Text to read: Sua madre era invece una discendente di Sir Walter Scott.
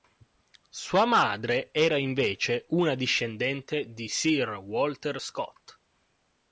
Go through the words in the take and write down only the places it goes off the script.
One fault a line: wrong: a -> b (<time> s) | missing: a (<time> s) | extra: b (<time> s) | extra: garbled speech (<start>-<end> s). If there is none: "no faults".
no faults